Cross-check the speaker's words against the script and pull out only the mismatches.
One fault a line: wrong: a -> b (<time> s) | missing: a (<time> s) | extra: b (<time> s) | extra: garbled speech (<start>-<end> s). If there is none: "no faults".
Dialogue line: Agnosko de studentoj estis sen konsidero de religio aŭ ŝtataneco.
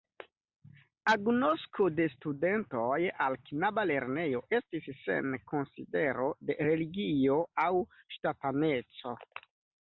extra: al knaba lernejo (3.3 s)